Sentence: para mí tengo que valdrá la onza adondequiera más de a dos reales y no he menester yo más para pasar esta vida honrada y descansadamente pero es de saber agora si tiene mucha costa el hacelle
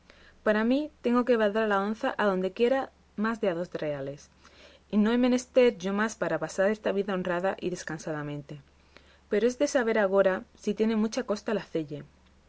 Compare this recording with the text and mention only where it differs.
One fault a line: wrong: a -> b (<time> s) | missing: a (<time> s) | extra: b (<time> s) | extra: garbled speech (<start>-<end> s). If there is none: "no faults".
no faults